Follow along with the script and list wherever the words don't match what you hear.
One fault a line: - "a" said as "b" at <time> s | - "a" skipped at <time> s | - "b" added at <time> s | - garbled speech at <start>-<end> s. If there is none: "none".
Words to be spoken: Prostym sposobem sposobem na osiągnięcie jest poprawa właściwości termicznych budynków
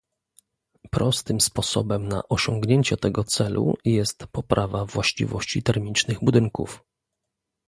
- "sposobem" skipped at 2.1 s
- "tego celu" added at 3.0 s